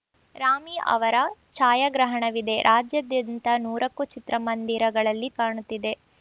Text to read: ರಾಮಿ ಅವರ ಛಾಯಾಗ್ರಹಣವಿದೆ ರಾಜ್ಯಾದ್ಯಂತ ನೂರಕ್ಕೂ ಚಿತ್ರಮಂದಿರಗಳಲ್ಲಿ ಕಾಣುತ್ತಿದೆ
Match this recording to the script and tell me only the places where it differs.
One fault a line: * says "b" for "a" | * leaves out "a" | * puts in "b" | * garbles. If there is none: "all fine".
all fine